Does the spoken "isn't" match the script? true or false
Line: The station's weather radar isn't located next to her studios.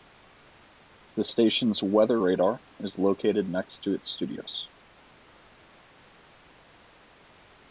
false